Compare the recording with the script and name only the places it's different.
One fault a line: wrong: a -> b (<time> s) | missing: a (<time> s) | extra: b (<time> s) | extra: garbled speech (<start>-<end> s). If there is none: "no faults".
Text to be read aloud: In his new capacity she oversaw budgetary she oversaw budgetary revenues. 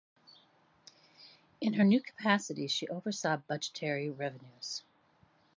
wrong: his -> her (1.7 s)
missing: she oversaw budgetary (4.1 s)